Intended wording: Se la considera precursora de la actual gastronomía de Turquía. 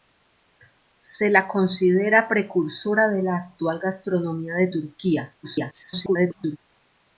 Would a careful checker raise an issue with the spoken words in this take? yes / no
yes